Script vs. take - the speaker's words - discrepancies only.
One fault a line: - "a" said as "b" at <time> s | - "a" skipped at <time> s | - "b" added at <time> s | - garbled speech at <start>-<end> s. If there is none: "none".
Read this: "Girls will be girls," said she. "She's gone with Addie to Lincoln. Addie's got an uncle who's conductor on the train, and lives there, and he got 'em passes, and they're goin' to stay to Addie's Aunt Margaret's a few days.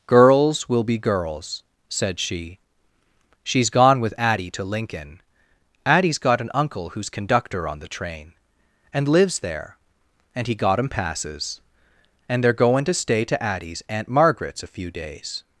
none